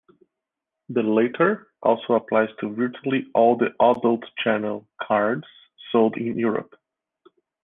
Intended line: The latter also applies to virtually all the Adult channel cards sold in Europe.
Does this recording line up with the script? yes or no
yes